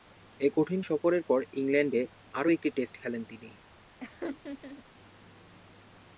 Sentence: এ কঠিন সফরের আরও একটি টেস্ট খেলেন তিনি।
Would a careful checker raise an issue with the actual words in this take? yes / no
yes